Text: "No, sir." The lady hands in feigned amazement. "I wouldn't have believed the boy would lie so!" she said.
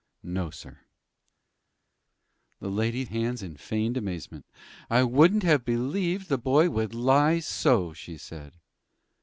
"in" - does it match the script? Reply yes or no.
yes